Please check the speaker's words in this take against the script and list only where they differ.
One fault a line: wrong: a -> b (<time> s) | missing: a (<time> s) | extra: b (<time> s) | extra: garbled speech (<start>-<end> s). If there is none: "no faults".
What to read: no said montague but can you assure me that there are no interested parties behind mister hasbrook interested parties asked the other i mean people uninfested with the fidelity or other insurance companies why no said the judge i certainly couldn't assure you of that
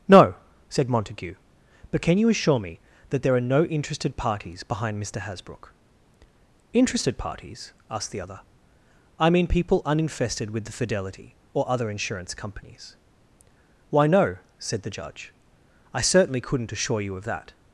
no faults